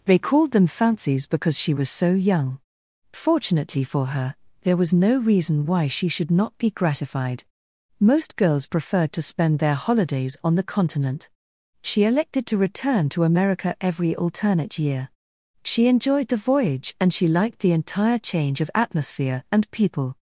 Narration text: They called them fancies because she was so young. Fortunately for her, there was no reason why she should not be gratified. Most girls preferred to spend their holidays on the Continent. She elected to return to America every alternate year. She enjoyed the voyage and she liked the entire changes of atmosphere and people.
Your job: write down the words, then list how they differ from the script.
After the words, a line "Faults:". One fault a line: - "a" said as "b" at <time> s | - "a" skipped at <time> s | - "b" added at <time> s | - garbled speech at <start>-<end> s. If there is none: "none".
They called them fancies because she was so young. Fortunately for her, there was no reason why she should not be gratified. Most girls preferred to spend their holidays on the Continent. She elected to return to America every alternate year. She enjoyed the voyage and she liked the entire change of atmosphere and people.
Faults:
- "changes" said as "change" at 18.2 s